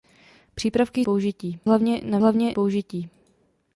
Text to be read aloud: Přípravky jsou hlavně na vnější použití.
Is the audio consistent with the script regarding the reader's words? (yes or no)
no